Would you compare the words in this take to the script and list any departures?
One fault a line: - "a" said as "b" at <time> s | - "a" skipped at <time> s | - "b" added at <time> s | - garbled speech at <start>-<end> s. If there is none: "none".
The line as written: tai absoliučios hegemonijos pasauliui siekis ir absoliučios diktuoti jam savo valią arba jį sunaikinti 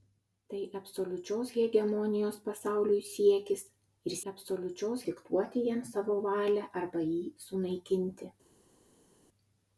none